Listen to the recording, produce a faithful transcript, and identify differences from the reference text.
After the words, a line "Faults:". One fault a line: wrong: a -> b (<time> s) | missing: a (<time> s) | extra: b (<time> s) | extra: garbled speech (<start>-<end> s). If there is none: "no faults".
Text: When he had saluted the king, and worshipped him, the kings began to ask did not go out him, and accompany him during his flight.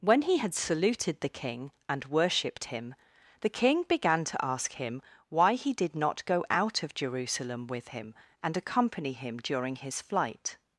When he had saluted the king, and worshipped him, the king began to ask him why he did not go out of Jerusalem with him, and accompany him during his flight.
Faults:
wrong: kings -> king (3.5 s)
extra: him why he (4.7 s)
extra: of Jerusalem with (6.8 s)